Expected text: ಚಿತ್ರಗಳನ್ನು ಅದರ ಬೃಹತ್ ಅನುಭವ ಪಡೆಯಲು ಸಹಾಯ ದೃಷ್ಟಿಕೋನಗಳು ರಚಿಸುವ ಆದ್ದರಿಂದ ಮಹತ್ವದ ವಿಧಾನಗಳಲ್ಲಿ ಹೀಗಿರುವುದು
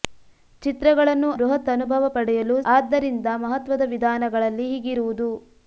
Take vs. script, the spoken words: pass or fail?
fail